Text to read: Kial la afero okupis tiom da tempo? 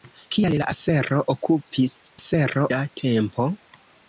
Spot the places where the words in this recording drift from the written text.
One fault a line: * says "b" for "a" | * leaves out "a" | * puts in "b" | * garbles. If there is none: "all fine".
* says "afero" for "tiom"